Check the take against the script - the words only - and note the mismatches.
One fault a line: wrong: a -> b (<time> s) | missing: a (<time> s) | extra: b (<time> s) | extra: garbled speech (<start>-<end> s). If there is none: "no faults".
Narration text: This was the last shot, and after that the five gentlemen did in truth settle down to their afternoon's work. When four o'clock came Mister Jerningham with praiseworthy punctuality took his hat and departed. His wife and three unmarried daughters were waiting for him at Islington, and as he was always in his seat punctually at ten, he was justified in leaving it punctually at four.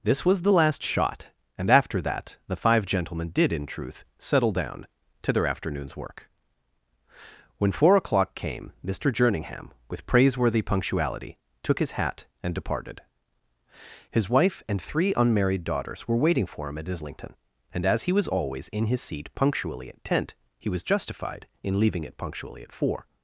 wrong: ten -> tent (20.0 s)